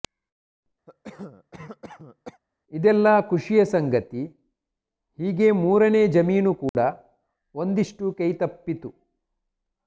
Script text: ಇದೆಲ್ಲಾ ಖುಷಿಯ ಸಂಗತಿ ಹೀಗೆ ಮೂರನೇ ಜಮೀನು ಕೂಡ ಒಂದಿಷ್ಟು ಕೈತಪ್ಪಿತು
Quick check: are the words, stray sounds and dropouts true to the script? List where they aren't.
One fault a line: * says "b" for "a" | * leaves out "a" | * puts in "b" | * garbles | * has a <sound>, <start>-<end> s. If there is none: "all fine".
* has a cough, 0.9-2.4 s
* has a dropout, 6.7-6.7 s